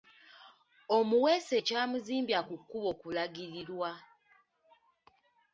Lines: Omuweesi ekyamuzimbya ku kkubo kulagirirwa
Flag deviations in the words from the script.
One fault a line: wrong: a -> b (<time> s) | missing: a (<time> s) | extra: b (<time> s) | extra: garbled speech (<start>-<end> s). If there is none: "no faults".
no faults